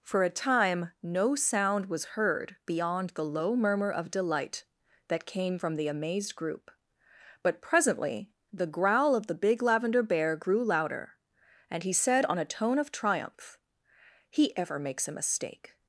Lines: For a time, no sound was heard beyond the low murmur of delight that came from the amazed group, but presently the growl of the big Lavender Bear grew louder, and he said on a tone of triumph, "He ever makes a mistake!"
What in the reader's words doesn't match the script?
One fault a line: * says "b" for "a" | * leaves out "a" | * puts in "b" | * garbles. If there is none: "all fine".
all fine